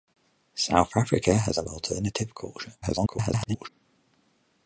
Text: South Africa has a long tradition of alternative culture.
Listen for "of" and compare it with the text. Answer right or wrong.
wrong